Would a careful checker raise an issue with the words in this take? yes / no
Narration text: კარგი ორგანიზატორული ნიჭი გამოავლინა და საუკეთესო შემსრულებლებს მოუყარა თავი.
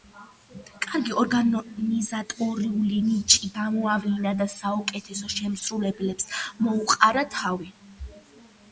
no